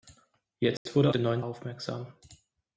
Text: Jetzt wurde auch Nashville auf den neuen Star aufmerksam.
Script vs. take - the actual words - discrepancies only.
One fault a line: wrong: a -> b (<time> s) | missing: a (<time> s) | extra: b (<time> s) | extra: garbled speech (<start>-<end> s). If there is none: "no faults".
missing: auch Nashville auf (1.1 s)
missing: Star (1.4 s)